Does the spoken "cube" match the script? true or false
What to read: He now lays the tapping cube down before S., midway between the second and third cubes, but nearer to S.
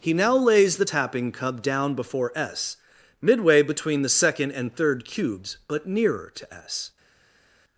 false